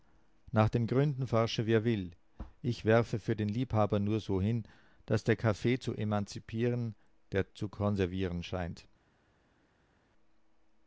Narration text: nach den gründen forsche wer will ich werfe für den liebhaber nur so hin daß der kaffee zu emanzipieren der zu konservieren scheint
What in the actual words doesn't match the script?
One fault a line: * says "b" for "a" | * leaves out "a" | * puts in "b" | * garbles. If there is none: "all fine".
all fine